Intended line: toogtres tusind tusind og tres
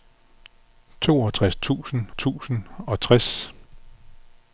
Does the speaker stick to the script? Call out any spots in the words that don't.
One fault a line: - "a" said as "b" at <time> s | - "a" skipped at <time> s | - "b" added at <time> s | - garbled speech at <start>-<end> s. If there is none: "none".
none